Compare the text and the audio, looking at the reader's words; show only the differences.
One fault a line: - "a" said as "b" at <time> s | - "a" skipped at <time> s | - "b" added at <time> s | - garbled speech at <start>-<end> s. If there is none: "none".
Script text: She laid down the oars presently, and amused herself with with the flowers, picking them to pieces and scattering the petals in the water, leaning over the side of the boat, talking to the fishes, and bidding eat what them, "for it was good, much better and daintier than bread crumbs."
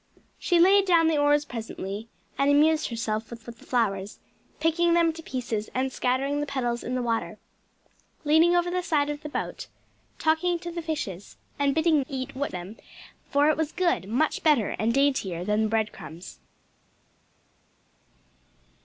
none